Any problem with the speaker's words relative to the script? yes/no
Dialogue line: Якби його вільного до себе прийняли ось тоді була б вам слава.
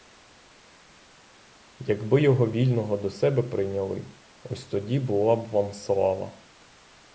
no